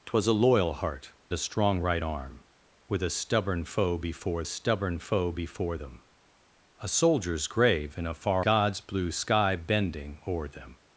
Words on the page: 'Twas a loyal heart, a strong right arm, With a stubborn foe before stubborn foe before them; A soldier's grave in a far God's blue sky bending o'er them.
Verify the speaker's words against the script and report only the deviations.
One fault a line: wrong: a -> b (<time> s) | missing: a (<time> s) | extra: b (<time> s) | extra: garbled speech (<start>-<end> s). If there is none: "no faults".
no faults